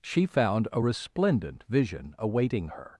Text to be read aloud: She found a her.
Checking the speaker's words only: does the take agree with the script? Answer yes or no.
no